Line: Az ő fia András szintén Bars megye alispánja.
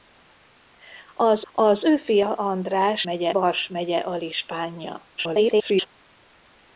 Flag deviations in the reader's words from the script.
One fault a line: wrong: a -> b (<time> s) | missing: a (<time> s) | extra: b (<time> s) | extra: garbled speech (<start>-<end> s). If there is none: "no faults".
extra: az (1.5 s)
wrong: szintén -> megye (3.0 s)
extra: garbled speech (5.2-5.9 s)